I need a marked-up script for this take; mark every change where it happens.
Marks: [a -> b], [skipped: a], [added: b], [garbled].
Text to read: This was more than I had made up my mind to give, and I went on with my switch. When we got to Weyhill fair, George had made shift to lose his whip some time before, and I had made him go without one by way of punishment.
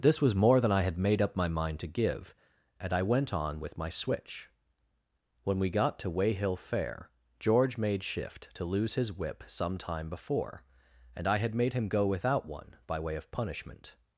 This was more than I had made up my mind to give, and I went on with my switch. When we got to Weyhill fair, George [skipped: had] made shift to lose his whip some time before, and I had made him go without one by way of punishment.